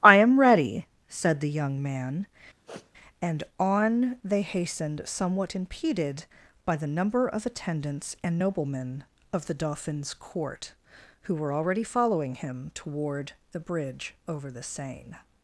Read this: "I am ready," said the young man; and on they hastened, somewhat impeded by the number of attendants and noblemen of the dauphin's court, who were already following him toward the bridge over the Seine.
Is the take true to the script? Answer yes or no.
yes